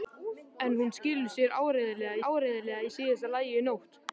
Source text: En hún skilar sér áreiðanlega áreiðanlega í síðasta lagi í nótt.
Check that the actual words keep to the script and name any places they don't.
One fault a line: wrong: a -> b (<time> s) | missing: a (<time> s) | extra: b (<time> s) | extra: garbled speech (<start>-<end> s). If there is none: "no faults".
no faults